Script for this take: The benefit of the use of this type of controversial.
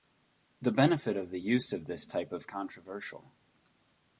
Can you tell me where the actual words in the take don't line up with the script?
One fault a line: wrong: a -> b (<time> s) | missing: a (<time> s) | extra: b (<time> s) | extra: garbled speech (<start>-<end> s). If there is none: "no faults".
no faults